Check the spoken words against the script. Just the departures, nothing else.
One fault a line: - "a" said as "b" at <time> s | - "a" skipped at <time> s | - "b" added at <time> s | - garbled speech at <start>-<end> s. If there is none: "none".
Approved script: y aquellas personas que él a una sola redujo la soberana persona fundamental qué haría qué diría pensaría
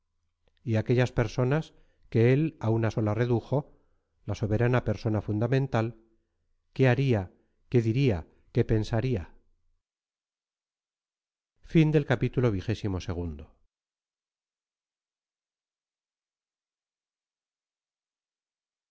- "qué" added at 8.5 s